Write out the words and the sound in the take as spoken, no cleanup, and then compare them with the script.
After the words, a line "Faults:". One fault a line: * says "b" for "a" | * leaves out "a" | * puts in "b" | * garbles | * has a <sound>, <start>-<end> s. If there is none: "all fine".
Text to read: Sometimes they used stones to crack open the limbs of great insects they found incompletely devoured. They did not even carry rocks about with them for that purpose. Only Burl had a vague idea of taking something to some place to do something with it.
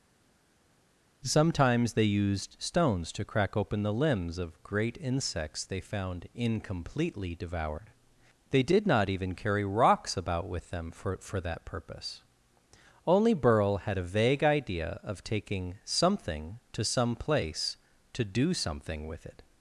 Sometimes they used stones to crack open the limbs of great insects they found incompletely devoured. They did not even carry rocks about with them for for that purpose. Only Burl had a vague idea of taking something to some place to do something with it.
Faults:
* puts in "for"